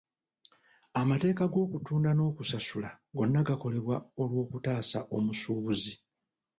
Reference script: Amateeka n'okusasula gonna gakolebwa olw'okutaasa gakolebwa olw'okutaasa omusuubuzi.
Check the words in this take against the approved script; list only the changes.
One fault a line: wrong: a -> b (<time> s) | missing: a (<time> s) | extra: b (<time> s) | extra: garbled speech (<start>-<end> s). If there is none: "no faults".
extra: g'okutunda (1.5 s)
missing: gakolebwa olw'okutaasa (5.0 s)